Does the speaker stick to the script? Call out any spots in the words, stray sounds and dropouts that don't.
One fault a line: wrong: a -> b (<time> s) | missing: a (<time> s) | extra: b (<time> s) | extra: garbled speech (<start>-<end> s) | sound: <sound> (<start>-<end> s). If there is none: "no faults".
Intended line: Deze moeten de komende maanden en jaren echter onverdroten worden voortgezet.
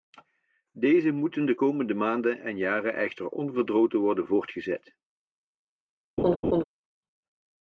sound: laugh (6.2-6.6 s)